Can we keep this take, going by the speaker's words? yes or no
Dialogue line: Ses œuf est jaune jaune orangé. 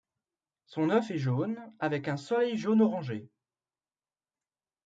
no